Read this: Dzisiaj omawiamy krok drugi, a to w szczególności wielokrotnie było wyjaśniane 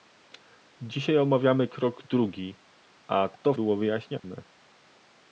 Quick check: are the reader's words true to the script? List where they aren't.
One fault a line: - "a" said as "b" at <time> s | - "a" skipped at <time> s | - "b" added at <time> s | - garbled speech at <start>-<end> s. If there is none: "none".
- "w szczególności wielokrotnie" skipped at 3.5 s